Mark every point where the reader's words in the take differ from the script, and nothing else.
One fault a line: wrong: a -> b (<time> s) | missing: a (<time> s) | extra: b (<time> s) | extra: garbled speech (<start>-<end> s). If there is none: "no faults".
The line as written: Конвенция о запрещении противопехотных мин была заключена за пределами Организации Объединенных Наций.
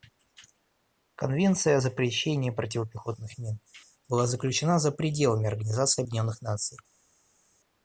no faults